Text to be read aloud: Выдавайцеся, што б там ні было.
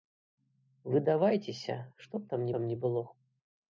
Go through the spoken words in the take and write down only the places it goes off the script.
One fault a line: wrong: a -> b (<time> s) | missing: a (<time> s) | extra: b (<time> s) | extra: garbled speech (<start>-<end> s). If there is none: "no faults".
extra: там (2.6 s)